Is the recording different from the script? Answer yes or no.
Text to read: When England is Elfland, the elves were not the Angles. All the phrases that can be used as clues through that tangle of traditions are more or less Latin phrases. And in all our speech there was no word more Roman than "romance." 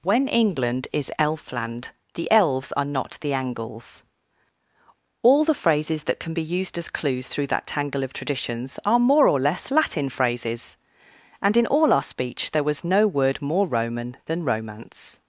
yes